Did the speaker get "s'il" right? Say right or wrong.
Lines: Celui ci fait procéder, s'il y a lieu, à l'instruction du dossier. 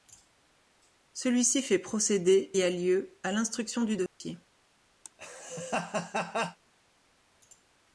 wrong